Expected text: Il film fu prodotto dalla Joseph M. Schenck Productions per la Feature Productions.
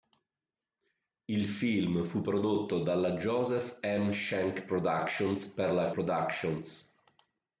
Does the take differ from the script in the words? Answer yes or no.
yes